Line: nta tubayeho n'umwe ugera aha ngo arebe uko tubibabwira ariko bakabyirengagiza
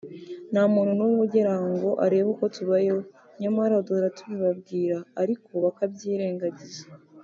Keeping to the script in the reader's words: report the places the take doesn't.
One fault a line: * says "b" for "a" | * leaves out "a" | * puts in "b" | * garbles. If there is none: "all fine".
* says "muntu" for "tubayeho"
* puts in "tubayeho nyamara duhora"